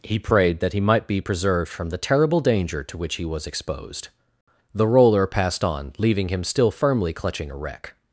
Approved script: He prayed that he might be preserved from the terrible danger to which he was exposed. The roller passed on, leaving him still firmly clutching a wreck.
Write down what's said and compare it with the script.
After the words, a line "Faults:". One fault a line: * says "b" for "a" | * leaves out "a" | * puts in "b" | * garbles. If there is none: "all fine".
He prayed that he might be preserved from the terrible danger to which he was exposed. The roller passed on, leaving him still firmly clutching a wreck.
Faults:
all fine